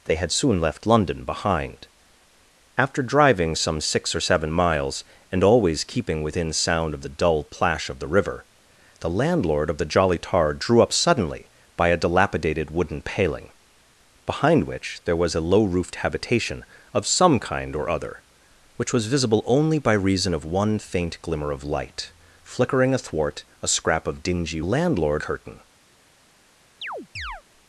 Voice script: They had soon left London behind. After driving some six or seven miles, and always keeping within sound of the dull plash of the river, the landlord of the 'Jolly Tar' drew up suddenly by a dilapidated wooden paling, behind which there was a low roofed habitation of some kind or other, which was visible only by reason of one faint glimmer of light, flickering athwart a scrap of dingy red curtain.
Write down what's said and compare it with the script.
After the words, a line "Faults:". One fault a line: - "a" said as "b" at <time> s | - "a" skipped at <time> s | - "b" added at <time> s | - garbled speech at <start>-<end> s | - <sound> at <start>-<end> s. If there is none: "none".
They had soon left London behind. After driving some six or seven miles, and always keeping within sound of the dull plash of the river, the landlord of the 'Jolly Tar' drew up suddenly by a dilapidated wooden paling, behind which there was a low roofed habitation of some kind or other, which was visible only by reason of one faint glimmer of light, flickering athwart a scrap of dingy landlord curtain.
Faults:
- "red" said as "landlord" at 24.6 s
- chirp at 26.8-27.4 s